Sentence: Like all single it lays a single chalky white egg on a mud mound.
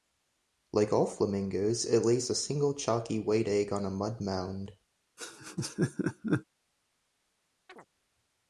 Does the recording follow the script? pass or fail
fail